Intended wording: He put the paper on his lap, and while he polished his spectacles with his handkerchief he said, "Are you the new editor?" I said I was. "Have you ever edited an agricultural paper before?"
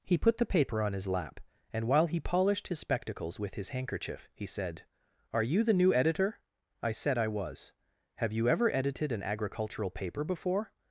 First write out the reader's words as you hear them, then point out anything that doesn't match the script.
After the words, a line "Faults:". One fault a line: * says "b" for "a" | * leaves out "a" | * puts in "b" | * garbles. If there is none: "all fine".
He put the paper on his lap, and while he polished his spectacles with his handkerchief he said, "Are you the new editor?" I said I was. "Have you ever edited an agricultural paper before?"
Faults:
all fine